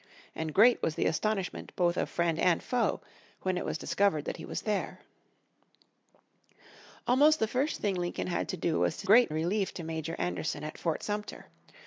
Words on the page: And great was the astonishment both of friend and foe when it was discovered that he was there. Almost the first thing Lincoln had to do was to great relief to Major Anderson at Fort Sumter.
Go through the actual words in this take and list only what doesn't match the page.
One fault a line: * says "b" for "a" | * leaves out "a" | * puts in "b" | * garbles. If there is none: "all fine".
all fine